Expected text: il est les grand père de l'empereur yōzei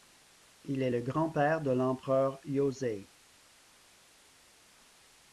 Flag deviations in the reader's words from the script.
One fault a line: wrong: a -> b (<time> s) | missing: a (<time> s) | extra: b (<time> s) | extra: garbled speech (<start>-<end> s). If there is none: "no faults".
wrong: les -> le (0.9 s)